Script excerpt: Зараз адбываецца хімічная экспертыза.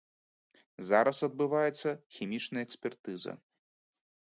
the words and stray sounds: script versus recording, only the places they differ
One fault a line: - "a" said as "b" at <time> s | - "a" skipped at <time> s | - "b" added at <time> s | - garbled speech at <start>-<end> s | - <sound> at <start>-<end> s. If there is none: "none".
none